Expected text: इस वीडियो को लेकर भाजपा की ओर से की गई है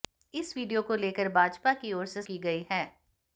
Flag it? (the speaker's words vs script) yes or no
no